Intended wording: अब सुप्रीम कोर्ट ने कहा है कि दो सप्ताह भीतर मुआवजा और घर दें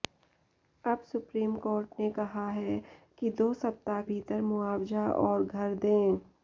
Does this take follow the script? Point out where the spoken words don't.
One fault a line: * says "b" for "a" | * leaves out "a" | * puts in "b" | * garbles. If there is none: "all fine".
all fine